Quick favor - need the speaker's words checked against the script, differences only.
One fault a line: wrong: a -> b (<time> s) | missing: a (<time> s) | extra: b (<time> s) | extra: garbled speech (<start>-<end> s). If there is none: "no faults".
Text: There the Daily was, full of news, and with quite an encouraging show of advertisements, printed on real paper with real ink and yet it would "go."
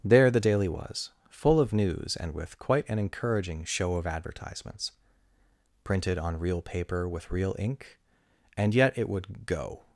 no faults